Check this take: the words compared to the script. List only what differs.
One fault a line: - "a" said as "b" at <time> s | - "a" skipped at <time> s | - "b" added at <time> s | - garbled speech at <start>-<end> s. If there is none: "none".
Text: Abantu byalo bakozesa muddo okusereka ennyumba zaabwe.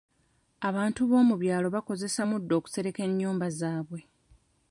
- "b'omu" added at 1.1 s